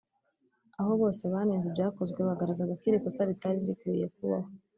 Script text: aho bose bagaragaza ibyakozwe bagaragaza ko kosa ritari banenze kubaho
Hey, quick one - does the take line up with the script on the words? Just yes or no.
no